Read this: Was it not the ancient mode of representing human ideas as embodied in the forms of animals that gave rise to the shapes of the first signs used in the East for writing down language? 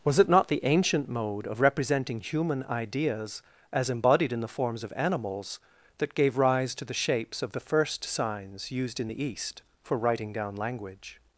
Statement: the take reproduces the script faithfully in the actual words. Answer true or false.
true